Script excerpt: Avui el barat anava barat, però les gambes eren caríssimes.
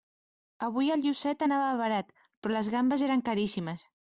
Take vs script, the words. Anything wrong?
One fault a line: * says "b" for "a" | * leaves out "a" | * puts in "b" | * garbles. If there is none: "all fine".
* says "llucet" for "barat"